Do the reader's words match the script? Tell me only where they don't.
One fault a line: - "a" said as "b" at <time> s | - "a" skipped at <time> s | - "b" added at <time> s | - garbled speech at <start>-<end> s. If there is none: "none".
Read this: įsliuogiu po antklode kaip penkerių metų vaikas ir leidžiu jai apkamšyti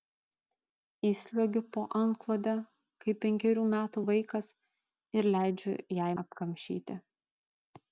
none